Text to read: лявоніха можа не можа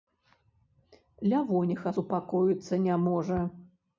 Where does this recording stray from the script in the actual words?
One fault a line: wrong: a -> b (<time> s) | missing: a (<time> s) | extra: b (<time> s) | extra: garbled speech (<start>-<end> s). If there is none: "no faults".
wrong: можа -> супакоіцца (1.9 s)